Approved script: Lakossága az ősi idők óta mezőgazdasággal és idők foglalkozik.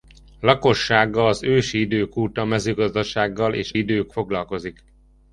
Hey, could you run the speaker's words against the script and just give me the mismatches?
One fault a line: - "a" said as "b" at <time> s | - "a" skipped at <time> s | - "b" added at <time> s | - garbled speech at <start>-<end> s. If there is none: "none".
none